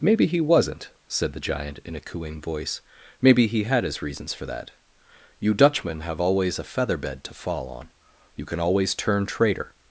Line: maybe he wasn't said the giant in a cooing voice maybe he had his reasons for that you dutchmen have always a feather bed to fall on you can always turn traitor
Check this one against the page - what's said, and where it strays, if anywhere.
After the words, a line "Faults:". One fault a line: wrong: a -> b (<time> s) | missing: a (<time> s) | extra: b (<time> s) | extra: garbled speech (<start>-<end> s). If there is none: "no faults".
maybe he wasn't said the giant in a cooing voice maybe he had his reasons for that you dutchmen have always a feather bed to fall on you can always turn traitor
Faults:
no faults